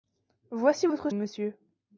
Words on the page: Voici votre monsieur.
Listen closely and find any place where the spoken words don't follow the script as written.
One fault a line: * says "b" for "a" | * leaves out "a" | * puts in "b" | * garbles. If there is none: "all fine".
all fine